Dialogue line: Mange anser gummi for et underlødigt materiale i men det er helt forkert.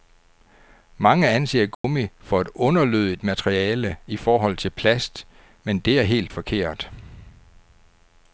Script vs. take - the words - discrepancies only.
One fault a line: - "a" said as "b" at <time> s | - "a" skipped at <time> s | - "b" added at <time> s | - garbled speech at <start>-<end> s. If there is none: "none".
- "forhold til plast" added at 4.2 s